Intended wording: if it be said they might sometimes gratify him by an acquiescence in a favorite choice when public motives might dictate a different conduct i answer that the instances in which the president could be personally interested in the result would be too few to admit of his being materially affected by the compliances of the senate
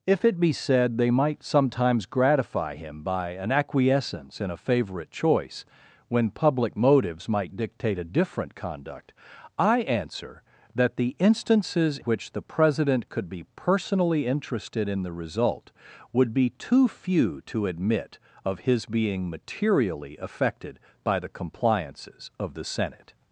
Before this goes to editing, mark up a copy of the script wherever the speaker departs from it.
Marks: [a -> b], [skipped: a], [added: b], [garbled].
if it be said they might sometimes gratify him by an acquiescence in a favorite choice when public motives might dictate a different conduct i answer that the instances [skipped: in] which the president could be personally interested in the result would be too few to admit of his being materially affected by the compliances of the senate